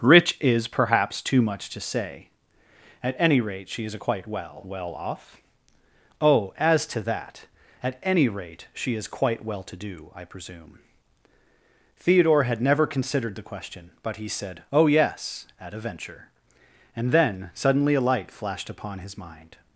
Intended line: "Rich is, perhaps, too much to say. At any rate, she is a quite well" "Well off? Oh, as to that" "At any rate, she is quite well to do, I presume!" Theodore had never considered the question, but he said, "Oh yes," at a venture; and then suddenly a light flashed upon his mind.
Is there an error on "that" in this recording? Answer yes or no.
no